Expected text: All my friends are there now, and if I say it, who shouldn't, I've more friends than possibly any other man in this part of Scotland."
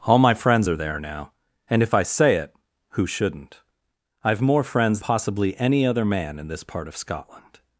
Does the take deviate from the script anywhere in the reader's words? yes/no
yes